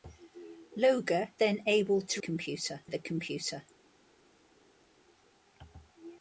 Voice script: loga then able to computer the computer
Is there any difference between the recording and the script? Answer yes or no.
no